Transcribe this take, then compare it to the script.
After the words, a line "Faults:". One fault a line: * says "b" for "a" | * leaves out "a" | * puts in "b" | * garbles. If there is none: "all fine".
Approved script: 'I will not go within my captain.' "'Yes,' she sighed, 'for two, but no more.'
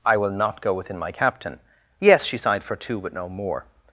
'I will not go within my captain.' "'Yes,' she sighed, 'for two, but no more.'
Faults:
all fine